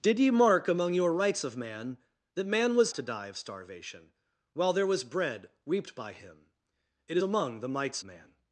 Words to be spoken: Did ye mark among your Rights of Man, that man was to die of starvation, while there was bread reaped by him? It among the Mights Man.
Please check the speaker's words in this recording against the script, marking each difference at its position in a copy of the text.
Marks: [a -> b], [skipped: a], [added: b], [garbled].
Did ye mark among your Rights of Man, that man was to die of starvation, while there was bread reaped by him? It among the Mights Man.